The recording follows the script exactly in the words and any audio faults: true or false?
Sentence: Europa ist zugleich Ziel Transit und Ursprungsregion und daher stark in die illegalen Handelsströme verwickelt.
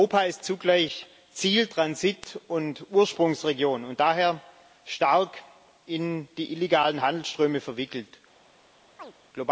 false